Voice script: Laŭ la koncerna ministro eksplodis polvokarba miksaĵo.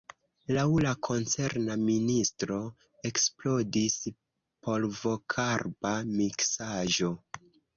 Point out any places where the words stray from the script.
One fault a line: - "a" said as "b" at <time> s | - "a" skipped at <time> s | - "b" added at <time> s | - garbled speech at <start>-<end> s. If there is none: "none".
none